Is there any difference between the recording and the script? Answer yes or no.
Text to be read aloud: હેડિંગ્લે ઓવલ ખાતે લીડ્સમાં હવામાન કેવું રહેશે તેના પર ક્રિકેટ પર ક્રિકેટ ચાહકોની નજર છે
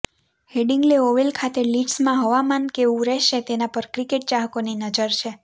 yes